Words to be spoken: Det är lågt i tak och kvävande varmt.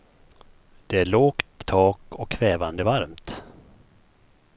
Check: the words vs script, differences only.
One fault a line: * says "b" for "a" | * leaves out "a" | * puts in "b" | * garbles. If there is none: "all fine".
* leaves out "i"